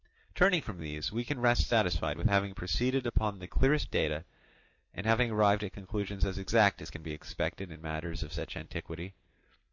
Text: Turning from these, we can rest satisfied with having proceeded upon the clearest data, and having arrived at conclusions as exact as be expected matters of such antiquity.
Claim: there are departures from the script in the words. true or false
true